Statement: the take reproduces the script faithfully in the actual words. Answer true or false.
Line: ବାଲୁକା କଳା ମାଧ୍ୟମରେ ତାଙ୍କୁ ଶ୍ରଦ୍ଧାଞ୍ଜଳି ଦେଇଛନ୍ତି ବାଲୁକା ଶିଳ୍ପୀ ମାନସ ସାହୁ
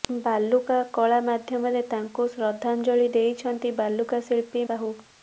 false